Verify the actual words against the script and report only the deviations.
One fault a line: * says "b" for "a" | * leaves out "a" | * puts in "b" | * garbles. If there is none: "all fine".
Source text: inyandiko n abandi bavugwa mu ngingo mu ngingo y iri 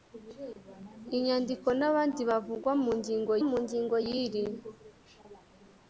all fine